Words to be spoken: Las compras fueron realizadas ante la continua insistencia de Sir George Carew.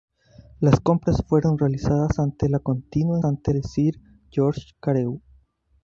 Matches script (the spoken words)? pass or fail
fail